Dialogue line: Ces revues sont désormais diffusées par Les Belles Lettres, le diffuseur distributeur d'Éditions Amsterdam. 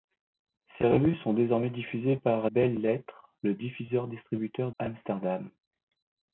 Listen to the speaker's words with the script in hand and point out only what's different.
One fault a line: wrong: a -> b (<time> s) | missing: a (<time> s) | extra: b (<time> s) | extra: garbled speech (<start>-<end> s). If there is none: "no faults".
missing: Les (2.5 s)
missing: d'Éditions (4.7 s)